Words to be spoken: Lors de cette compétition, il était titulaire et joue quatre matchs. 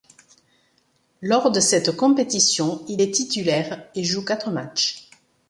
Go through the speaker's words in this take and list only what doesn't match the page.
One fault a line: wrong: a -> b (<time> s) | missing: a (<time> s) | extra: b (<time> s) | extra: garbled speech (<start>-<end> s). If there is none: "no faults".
wrong: était -> est (3.0 s)